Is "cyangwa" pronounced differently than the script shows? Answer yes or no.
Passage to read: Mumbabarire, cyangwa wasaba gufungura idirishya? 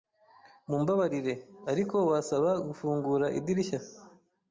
yes